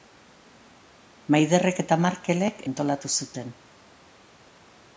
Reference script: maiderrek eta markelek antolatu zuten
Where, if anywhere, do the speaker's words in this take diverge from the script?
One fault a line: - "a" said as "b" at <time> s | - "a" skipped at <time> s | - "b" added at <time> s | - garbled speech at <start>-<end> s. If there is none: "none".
none